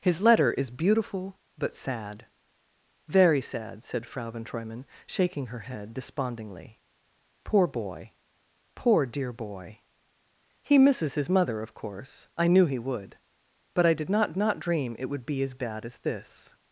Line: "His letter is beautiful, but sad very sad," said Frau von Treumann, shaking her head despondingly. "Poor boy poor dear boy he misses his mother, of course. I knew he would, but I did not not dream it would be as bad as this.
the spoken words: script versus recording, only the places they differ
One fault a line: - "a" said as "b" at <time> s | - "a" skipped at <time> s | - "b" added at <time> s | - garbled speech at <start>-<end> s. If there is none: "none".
none